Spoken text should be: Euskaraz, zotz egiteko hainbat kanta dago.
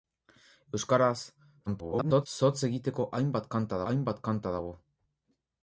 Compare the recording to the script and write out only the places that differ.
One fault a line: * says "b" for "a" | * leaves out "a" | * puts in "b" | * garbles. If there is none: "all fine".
* garbles
* puts in "hainbat kanta"